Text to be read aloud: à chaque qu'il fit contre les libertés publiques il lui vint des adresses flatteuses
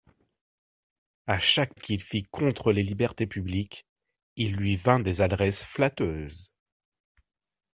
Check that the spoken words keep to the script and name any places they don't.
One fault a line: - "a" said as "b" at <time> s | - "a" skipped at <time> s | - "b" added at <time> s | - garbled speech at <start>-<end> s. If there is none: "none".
none